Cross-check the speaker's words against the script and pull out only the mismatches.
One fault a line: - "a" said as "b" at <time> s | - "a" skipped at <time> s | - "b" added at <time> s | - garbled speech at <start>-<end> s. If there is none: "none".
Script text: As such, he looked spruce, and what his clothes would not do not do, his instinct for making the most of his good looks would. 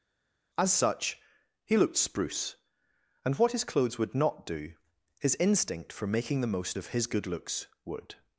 - "not do" skipped at 4.7 s